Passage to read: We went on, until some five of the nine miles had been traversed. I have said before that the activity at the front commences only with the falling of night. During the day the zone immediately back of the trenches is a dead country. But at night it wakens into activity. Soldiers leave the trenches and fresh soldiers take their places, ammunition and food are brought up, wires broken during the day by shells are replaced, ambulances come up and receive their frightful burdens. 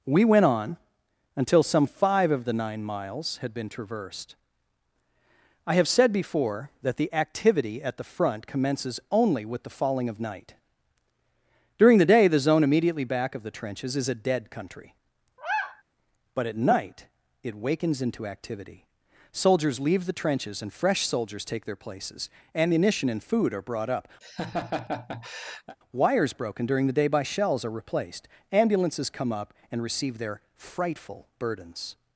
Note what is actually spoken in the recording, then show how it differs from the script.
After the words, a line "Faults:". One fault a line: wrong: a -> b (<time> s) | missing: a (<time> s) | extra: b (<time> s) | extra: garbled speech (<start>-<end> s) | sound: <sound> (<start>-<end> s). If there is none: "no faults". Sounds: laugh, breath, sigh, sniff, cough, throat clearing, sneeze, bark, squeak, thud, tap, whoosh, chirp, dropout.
We went on, until some five of the nine miles had been traversed. I have said before that the activity at the front commences only with the falling of night. During the day the zone immediately back of the trenches is a dead country. But at night it wakens into activity. Soldiers leave the trenches and fresh soldiers take their places, ammunition and food are brought up, wires broken during the day by shells are replaced, ambulances come up and receive their frightful burdens.
Faults:
sound: sigh (15.4-15.8 s)
sound: laugh (24.2-25.8 s)